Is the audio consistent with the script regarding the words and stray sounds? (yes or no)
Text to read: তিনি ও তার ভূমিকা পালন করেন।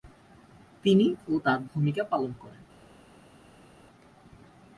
yes